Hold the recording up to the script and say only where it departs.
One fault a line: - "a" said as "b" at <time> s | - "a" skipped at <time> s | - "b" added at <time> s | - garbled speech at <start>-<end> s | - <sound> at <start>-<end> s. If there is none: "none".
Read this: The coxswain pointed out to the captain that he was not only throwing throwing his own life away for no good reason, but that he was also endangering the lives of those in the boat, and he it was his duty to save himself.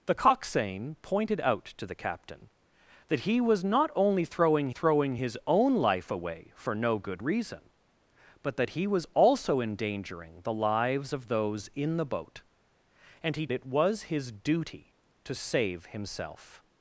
none